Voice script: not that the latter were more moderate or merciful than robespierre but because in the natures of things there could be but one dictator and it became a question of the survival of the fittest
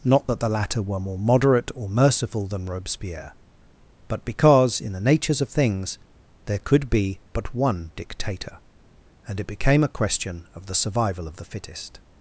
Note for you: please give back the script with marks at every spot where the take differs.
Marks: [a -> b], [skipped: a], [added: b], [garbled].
not that the latter were more moderate or merciful than robespierre but because in the natures of things there could be but one dictator and it became a question of the survival of the fittest